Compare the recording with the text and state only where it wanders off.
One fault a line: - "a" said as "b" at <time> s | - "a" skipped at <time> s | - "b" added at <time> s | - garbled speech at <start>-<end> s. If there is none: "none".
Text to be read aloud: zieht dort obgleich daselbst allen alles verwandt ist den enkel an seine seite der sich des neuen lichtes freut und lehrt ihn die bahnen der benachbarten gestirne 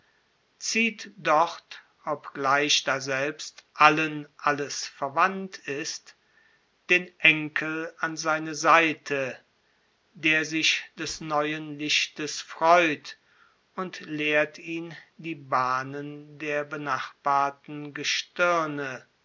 none